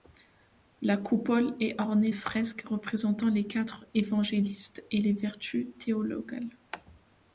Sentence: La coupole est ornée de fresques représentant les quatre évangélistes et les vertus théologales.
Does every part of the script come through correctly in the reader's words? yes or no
no